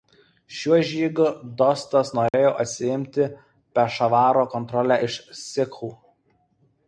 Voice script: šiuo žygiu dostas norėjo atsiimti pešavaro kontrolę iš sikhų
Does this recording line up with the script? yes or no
yes